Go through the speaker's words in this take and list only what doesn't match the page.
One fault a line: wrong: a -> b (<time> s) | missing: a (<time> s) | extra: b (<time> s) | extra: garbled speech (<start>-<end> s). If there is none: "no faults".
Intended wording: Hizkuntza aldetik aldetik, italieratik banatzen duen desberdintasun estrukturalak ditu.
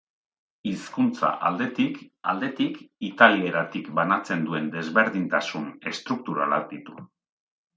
no faults